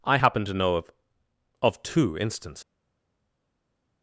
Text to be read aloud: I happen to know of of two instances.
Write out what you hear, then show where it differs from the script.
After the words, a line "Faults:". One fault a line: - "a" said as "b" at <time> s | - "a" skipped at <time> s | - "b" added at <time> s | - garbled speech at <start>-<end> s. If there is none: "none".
I happen to know of of two instances.
Faults:
none